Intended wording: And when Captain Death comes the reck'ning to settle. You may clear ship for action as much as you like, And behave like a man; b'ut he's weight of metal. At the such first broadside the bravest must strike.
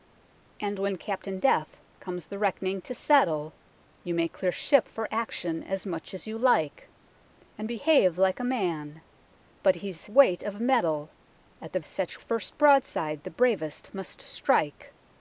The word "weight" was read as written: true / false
true